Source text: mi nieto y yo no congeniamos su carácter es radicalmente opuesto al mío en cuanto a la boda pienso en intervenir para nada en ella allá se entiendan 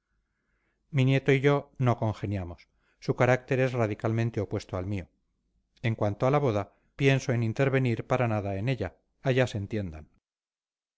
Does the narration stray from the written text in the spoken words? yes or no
no